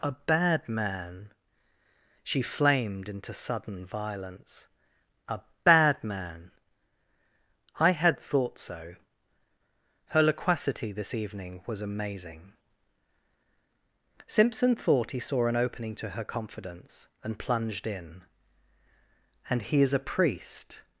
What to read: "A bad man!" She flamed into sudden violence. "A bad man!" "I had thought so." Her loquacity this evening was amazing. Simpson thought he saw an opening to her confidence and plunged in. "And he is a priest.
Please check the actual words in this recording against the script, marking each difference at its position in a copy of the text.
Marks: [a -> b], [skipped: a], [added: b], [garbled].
"A bad man!" She flamed into sudden violence. "A bad man!" "I had thought so." Her loquacity this evening was amazing. Simpson thought he saw an opening to her confidence and plunged in. "And he is a priest.